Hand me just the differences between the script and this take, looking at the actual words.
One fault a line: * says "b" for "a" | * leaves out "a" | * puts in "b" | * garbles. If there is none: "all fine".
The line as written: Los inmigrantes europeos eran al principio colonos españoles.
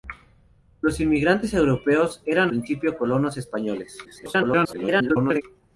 * leaves out "al"
* garbles